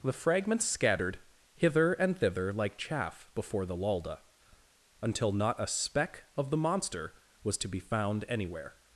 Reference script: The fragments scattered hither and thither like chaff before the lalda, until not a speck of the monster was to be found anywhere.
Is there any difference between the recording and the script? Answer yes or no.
no